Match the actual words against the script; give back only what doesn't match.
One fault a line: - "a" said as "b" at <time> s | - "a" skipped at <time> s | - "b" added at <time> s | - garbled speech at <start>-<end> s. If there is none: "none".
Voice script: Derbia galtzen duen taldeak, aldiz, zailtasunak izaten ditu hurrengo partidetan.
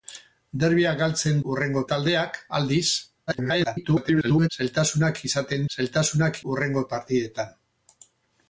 - "duen" said as "hurrengo" at 1.5 s
- garbled speech at 3.3-4.5 s
- "ditu" said as "zailtasunak" at 5.8 s